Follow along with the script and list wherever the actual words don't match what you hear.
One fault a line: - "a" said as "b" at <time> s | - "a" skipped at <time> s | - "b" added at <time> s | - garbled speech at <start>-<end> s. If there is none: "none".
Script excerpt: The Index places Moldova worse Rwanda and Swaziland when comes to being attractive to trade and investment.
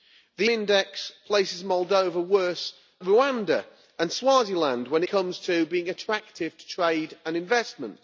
none